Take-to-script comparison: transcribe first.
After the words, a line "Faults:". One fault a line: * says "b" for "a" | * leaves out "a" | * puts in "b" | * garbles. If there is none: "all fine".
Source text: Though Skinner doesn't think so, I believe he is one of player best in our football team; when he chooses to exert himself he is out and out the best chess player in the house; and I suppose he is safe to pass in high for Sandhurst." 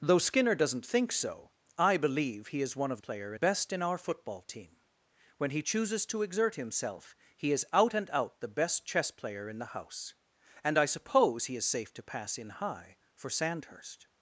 Though Skinner doesn't think so, I believe he is one of player best in our football team; when he chooses to exert himself he is out and out the best chess player in the house; and I suppose he is safe to pass in high for Sandhurst."
Faults:
all fine